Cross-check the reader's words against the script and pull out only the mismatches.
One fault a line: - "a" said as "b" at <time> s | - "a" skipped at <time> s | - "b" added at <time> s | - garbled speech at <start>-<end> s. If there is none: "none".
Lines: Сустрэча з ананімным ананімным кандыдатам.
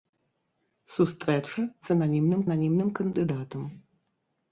none